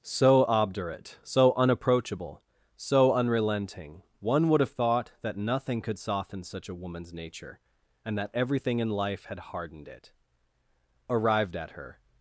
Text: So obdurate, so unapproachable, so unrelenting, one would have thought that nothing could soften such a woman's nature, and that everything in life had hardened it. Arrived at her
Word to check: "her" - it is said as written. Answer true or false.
true